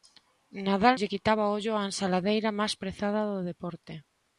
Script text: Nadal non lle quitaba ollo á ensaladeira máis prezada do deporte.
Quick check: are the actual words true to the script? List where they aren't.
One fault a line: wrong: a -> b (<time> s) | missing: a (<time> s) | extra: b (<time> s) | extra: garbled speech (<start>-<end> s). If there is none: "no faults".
missing: non (0.9 s)